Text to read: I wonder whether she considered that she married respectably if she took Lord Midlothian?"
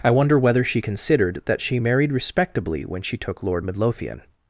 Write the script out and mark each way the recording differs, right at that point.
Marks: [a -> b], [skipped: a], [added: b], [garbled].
I wonder whether she considered that she married respectably [if -> when] she took Lord Midlothian?"